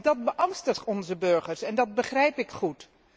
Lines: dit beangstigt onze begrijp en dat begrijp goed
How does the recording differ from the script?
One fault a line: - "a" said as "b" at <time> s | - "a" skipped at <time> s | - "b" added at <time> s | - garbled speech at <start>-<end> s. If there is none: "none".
- "dit" said as "dat" at 0.0 s
- "begrijp" said as "burgers" at 1.2 s
- "ik" added at 2.4 s